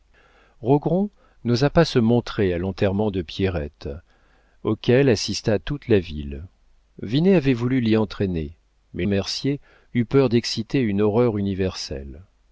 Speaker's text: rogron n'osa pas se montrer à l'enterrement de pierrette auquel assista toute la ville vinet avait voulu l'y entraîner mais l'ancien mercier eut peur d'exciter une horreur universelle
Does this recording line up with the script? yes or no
no